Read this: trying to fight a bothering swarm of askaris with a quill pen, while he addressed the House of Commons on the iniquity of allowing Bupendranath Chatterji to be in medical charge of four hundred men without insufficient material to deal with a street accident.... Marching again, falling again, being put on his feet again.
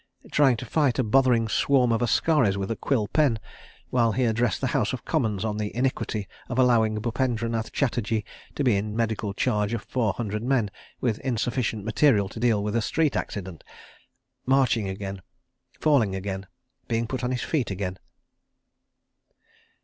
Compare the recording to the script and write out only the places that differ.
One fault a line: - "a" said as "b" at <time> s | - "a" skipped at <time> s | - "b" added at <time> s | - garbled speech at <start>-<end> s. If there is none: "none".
- "without" said as "with" at 11.0 s